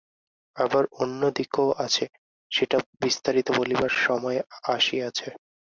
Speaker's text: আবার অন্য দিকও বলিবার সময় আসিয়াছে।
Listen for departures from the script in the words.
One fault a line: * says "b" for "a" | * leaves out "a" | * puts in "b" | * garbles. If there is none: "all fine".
* puts in "আছে সেটা বিস্তারিত"